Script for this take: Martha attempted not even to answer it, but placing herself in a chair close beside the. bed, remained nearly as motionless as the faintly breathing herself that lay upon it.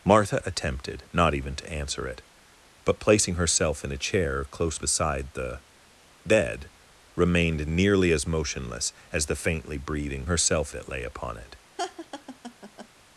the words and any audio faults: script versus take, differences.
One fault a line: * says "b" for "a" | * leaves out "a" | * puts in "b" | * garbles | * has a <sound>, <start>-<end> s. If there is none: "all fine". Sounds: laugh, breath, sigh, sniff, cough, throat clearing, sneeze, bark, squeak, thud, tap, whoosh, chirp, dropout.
* has a laugh, 11.8-12.9 s